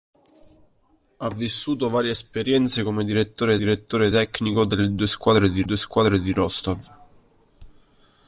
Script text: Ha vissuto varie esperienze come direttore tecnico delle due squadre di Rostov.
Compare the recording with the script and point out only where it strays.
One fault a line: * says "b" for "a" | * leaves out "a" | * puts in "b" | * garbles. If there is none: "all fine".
* puts in "direttore"
* puts in "due squadre di"